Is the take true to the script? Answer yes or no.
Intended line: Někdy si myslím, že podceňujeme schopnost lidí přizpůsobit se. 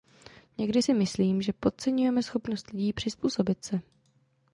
yes